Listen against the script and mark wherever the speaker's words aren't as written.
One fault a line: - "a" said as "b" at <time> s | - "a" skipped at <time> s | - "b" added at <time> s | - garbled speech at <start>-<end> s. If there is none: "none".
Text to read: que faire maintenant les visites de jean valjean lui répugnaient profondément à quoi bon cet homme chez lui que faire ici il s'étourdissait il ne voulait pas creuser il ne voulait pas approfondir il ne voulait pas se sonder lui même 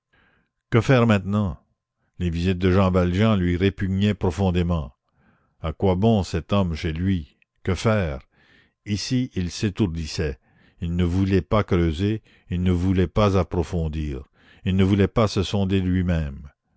none